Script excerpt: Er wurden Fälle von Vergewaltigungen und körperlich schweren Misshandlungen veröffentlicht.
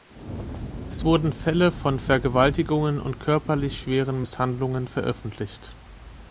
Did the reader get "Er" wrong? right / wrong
wrong